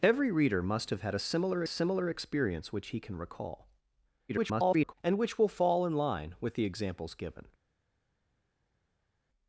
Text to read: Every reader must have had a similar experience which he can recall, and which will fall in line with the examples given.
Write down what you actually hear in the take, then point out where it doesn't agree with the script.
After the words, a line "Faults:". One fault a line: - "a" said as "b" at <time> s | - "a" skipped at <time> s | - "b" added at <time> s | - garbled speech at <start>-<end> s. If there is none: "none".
Every reader must have had a similar similar experience which he can recall, [garbled] and which will fall in line with the examples given.
Faults:
- "similar" added at 1.7 s
- garbled speech at 4.3-4.9 s